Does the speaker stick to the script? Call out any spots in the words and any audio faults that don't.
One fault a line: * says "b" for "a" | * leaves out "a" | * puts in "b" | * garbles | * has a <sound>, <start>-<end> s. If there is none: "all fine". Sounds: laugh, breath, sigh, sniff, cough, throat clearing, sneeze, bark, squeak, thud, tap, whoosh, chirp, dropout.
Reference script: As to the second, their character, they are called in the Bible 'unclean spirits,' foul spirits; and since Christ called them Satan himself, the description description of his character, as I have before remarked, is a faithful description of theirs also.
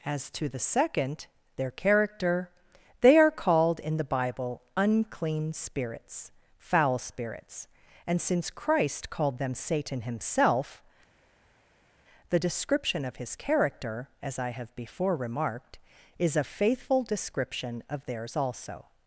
* leaves out "description"